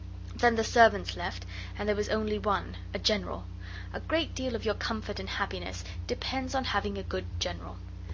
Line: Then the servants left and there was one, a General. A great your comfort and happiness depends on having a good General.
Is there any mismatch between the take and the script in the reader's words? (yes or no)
yes